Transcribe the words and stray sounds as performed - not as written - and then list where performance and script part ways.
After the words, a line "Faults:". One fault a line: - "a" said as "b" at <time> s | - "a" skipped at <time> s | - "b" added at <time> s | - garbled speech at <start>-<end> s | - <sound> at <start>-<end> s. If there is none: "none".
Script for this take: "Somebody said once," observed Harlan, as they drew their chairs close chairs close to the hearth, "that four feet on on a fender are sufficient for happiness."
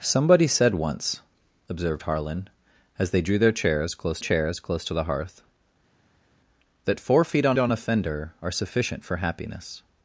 "Somebody said once," observed Harlan, as they drew their chairs close chairs close to the hearth, "that four feet on on a fender are sufficient for happiness."
Faults:
none